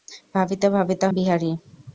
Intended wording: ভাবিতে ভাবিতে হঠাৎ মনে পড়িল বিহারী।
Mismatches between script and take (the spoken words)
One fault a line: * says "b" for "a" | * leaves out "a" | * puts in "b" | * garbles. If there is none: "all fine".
* leaves out "হঠাৎ মনে পড়িল"